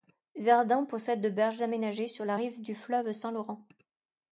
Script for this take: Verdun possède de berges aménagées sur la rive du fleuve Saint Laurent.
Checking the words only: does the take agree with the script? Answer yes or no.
yes